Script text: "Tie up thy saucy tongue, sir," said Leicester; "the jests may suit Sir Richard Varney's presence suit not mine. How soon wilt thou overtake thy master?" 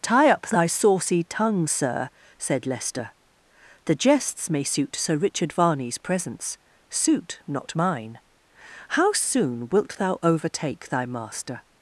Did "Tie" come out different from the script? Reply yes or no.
no